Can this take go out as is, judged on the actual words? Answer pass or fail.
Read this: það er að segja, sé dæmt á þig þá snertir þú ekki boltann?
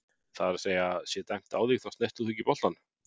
pass